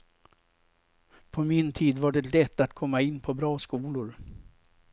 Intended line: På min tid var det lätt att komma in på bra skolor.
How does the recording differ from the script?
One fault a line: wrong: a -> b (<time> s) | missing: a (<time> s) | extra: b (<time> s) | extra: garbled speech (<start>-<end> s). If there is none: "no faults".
no faults